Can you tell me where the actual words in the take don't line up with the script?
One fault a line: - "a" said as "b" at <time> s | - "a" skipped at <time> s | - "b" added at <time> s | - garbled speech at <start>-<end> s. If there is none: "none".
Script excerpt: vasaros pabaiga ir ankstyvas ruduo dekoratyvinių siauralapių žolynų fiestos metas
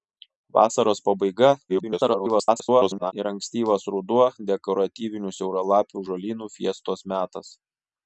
- garbled speech at 1.7-3.1 s